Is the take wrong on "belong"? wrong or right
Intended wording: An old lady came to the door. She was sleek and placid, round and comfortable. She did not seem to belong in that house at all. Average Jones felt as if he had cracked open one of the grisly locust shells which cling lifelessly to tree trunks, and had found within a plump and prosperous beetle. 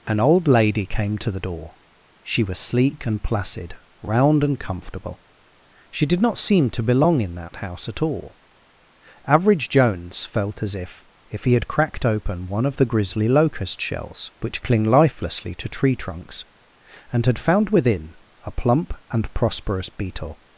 right